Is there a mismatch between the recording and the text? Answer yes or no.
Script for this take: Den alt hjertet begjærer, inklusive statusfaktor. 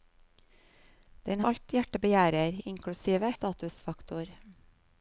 no